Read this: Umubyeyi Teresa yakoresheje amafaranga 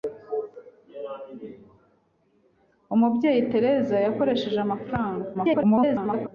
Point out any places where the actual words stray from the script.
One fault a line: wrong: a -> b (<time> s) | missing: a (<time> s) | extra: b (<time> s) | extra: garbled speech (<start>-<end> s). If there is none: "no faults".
extra: garbled speech (5.3-6.3 s)